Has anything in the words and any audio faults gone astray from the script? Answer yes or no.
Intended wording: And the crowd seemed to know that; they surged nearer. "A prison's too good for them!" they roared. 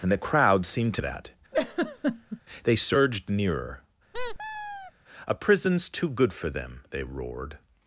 yes